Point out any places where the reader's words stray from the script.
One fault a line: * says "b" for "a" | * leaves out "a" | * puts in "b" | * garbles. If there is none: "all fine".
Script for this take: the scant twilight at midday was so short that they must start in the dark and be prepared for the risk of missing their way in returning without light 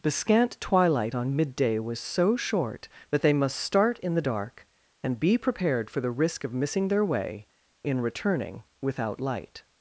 * says "on" for "at"